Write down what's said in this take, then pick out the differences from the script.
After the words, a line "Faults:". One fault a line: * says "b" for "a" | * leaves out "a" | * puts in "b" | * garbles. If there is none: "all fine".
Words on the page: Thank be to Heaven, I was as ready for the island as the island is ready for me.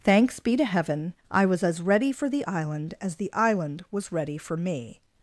Thanks be to Heaven, I was as ready for the island as the island was ready for me.
Faults:
* says "Thanks" for "Thank"
* says "was" for "is"